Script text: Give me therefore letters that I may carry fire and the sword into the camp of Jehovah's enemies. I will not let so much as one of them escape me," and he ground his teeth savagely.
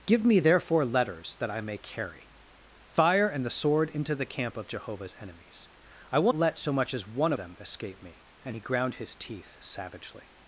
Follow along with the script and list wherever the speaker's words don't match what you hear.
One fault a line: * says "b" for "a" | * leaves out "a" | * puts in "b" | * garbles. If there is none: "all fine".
* leaves out "not"
* leaves out "of"